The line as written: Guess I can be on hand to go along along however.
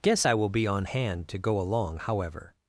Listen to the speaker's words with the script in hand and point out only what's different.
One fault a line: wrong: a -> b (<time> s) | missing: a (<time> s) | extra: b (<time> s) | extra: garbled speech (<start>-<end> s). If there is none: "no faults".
wrong: can -> will (0.3 s)
missing: along (2.0 s)